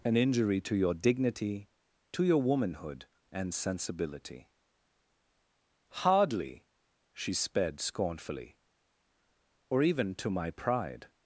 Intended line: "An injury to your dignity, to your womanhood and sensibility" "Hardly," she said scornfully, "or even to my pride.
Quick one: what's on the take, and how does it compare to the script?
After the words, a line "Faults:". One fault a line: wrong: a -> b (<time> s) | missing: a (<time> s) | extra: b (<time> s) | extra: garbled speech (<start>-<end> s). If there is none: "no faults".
"An injury to your dignity, to your womanhood and sensibility" "Hardly," she sped scornfully, "or even to my pride.
Faults:
wrong: said -> sped (7.3 s)